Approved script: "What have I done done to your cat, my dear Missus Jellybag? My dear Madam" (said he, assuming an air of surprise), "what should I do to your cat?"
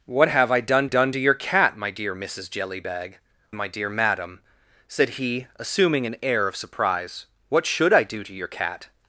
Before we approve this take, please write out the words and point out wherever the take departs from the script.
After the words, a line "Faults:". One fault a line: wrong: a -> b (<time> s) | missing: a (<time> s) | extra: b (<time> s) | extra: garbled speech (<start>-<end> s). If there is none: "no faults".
"What have I done done to your cat, my dear Missus Jellybag? My dear Madam" (said he, assuming an air of surprise), "what should I do to your cat?"
Faults:
no faults